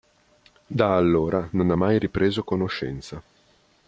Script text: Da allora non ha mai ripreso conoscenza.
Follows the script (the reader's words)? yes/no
yes